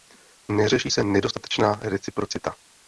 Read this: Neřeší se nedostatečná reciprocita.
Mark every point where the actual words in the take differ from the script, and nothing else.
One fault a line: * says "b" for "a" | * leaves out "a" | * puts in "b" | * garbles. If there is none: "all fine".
all fine